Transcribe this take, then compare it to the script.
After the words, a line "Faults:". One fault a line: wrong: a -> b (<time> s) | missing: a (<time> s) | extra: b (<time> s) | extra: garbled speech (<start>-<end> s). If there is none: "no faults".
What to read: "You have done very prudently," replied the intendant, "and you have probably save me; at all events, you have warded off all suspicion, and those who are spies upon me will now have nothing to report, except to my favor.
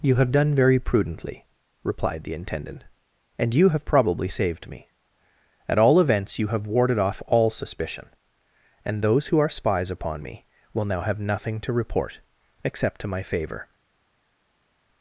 "You have done very prudently," replied the intendant, "and you have probably saved me; at all events, you have warded off all suspicion, and those who are spies upon me will now have nothing to report, except to my favor.
Faults:
wrong: save -> saved (4.3 s)